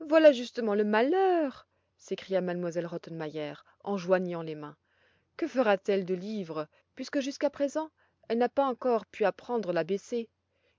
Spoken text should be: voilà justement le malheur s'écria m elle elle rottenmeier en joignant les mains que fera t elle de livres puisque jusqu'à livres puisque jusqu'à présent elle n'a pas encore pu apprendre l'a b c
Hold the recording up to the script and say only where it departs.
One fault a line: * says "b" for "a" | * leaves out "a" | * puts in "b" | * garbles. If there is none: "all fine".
* leaves out "elle"
* leaves out "livres puisque jusqu'à"